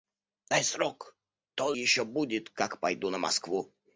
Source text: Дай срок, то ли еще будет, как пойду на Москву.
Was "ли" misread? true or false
true